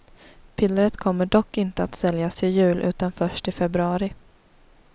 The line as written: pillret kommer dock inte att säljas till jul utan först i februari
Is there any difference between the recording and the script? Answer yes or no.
no